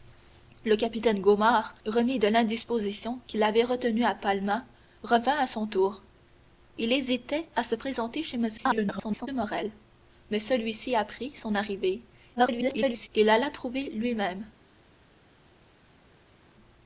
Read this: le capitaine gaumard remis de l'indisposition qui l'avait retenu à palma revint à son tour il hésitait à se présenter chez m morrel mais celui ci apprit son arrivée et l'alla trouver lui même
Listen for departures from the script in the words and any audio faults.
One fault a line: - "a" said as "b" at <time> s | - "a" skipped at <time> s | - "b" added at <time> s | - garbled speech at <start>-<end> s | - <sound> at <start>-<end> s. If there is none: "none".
- garbled speech at 8.6-9.3 s
- garbled speech at 12.4-13.1 s